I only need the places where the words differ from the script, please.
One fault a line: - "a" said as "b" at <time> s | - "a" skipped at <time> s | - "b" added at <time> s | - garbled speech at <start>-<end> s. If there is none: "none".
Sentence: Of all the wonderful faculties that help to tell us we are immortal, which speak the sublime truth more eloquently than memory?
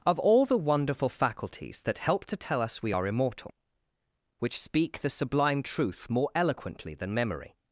none